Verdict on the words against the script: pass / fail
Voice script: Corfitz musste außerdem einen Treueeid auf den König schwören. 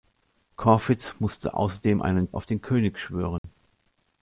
fail